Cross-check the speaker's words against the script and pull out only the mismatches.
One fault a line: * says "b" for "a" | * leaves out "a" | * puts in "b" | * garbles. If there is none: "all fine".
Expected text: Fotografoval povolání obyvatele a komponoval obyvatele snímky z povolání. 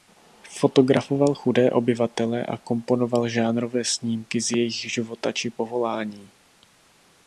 * says "chudé" for "povolání"
* says "žánrové" for "obyvatele"
* puts in "jejich života či"